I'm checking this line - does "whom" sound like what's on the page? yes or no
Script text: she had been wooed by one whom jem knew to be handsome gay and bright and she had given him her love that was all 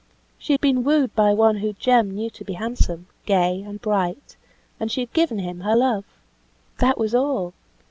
yes